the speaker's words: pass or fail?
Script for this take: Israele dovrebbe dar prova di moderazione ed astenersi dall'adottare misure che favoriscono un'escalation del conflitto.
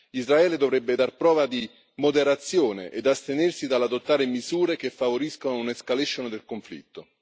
pass